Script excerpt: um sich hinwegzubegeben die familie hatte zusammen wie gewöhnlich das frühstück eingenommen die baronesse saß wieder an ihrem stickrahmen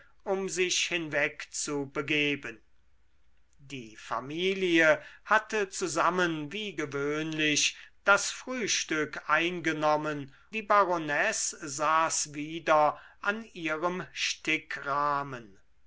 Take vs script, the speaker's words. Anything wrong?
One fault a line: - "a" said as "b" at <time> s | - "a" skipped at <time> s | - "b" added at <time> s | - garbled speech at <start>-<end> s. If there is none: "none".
none